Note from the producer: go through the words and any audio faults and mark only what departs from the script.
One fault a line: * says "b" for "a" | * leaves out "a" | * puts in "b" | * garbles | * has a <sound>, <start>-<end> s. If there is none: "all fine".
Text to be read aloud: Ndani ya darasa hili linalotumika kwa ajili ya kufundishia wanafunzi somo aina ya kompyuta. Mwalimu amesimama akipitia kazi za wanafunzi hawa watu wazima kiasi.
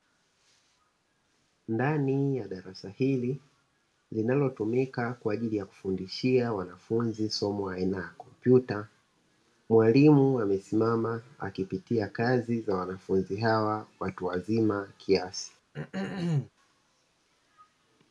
* has a throat clearing, 15.7-16.5 s